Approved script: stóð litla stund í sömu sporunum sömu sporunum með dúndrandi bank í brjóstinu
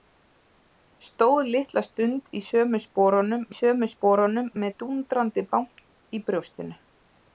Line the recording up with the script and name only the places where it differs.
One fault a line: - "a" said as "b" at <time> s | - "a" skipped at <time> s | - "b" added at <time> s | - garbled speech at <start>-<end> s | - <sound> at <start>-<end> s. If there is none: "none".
none